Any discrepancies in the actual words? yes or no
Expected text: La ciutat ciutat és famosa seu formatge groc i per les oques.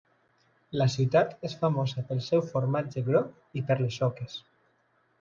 yes